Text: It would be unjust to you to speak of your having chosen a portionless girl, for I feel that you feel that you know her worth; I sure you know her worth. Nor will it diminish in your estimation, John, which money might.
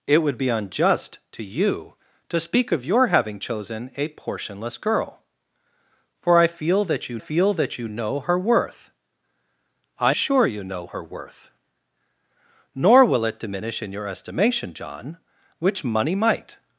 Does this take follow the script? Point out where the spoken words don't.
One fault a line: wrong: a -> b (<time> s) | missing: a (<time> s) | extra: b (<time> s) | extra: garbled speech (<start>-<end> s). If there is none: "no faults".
no faults